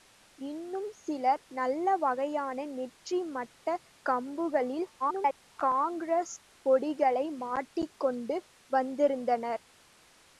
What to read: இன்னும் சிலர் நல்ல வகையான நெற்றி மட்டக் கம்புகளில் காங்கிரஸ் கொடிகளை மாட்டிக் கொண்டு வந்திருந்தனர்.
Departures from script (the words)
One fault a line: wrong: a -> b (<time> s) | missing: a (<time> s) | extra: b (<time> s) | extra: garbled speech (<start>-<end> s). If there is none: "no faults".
extra: garbled speech (5.0-5.5 s)